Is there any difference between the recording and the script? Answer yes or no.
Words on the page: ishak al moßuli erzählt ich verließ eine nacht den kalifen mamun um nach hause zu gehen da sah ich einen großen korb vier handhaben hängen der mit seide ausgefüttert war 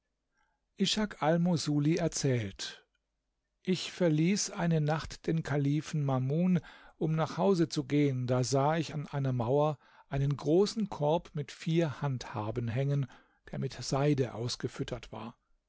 yes